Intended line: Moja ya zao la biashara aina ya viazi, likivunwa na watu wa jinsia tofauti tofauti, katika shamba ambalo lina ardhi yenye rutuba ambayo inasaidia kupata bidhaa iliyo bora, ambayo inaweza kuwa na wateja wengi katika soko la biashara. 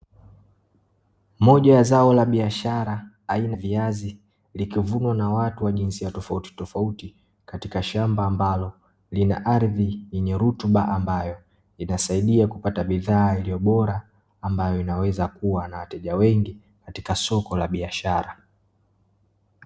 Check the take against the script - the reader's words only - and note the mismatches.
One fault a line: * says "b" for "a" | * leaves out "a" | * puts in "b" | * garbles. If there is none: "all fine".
* leaves out "ya"